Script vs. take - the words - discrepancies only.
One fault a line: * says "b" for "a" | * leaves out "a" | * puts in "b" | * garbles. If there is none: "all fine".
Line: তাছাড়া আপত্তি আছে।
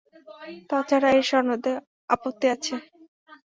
* puts in "এর সনদে"